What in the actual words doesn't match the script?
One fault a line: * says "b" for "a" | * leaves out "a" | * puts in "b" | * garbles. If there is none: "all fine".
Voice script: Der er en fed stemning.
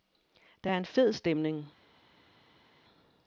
all fine